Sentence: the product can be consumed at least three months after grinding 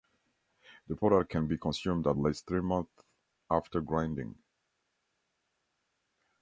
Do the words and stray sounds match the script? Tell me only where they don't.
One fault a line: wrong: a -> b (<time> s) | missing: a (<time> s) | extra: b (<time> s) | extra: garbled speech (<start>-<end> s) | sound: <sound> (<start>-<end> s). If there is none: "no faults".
no faults